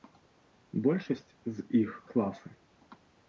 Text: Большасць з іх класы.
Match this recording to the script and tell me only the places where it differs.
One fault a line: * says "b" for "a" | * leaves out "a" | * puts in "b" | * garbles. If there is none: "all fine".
all fine